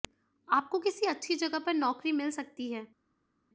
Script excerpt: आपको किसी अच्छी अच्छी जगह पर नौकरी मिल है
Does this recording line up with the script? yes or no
no